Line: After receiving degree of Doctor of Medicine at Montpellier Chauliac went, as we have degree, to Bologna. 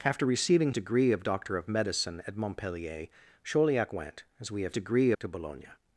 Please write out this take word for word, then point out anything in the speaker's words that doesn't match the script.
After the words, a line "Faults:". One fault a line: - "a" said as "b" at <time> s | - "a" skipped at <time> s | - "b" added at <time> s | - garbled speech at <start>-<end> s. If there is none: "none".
After receiving degree of Doctor of Medicine at Montpellier Chauliac went, as we have degree, to Bologna.
Faults:
none